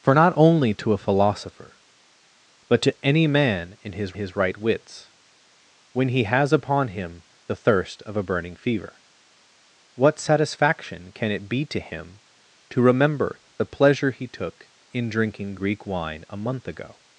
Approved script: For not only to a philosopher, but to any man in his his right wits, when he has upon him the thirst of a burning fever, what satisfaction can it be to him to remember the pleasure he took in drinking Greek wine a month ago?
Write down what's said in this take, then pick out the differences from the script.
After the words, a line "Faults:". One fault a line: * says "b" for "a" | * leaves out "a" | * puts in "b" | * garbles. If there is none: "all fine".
For not only to a philosopher, but to any man in his his right wits, when he has upon him the thirst of a burning fever, what satisfaction can it be to him to remember the pleasure he took in drinking Greek wine a month ago?
Faults:
all fine